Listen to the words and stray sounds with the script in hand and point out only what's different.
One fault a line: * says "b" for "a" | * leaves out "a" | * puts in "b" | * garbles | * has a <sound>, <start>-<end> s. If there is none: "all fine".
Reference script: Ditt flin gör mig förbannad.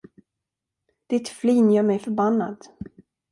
all fine